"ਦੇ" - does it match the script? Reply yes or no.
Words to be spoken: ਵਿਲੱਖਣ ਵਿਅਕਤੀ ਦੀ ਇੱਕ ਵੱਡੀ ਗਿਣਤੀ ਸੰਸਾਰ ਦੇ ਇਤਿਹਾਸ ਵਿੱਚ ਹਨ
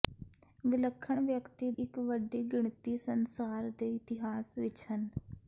yes